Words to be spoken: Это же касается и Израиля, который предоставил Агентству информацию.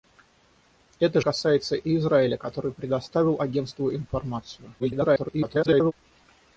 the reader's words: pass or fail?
fail